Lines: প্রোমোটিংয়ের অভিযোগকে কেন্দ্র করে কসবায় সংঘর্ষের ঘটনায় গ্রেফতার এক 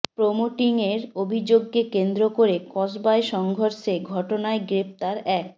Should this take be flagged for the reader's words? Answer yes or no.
no